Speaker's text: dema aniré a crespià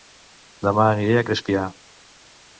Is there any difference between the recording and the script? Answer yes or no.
no